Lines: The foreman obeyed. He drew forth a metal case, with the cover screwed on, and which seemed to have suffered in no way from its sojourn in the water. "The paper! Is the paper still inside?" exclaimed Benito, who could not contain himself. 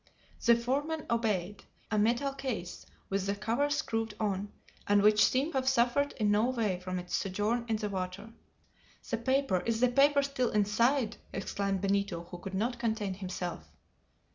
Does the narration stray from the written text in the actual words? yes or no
yes